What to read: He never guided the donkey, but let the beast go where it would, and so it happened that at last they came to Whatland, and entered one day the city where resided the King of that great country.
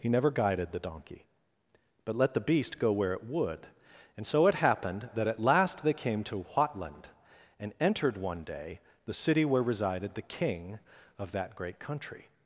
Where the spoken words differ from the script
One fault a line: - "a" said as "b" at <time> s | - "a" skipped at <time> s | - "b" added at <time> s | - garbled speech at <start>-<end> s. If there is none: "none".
none